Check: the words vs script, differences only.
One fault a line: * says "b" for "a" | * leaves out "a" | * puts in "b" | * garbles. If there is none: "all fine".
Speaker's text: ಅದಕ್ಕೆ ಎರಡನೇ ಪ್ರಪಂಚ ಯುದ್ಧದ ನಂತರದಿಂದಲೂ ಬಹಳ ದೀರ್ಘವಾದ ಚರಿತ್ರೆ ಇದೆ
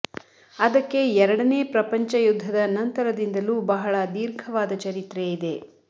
all fine